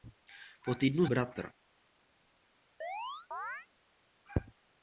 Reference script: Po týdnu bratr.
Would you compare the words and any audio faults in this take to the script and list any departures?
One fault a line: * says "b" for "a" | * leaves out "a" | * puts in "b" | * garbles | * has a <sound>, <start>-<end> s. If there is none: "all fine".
* has a chirp, 2.8-3.7 s